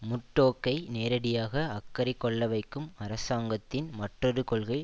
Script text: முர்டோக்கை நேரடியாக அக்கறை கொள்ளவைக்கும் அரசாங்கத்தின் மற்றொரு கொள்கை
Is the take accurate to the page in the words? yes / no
yes